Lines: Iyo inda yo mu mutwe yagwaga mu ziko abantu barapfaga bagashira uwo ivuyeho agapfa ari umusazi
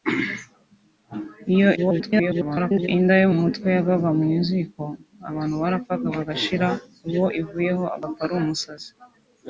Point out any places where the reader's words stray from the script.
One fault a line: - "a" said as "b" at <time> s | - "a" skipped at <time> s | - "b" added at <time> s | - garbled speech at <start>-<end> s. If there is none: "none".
- garbled speech at 1.8-2.9 s